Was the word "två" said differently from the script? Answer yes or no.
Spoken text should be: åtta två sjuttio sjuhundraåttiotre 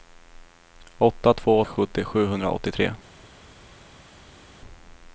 no